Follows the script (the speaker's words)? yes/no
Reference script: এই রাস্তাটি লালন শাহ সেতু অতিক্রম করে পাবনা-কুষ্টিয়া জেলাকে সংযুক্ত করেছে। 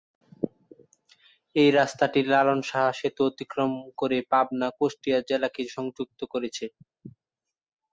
yes